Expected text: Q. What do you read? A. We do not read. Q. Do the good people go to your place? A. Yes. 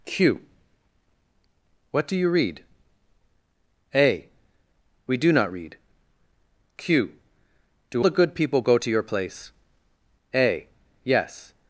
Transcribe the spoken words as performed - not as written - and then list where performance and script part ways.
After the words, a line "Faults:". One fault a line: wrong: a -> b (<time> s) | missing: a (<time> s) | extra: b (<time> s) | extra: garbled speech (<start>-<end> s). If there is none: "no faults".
Q. What do you read? A. We do not read. Q. Do the good people go to your place? A. Yes.
Faults:
no faults